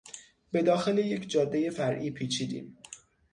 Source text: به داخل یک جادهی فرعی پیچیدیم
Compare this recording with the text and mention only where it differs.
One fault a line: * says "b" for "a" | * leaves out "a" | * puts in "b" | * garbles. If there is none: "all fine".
all fine